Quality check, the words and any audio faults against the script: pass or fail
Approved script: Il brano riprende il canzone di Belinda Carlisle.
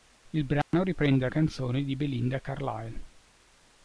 fail